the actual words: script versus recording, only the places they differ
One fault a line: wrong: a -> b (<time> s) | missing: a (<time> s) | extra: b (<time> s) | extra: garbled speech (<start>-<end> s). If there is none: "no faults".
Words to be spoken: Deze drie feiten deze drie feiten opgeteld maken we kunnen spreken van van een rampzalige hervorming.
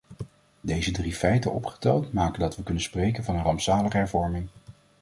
missing: deze drie feiten (1.5 s)
extra: dat (2.4 s)
missing: van (3.4 s)